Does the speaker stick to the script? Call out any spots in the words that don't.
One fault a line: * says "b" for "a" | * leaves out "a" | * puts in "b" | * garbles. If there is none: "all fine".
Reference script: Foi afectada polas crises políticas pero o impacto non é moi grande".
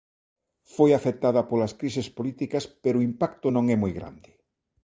all fine